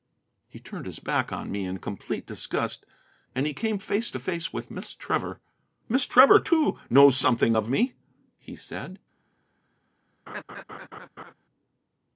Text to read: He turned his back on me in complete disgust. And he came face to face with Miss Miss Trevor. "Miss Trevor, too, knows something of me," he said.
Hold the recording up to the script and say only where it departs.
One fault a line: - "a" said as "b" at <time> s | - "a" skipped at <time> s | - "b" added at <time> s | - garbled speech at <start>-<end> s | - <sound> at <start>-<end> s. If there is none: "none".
- "Miss" skipped at 5.0 s
- laugh at 10.3-11.3 s